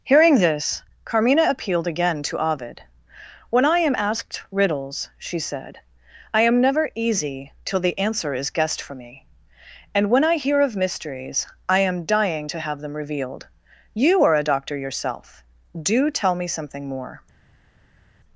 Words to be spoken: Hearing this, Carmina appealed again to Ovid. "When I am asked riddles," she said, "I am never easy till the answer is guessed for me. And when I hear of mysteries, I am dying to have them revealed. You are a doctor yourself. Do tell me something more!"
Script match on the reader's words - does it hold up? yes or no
yes